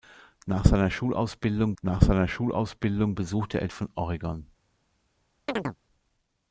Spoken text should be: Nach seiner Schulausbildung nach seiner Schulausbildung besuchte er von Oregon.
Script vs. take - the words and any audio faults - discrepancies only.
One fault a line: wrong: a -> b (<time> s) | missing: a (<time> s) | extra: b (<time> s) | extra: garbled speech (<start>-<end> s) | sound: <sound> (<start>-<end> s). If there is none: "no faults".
sound: chirp (5.5-5.8 s)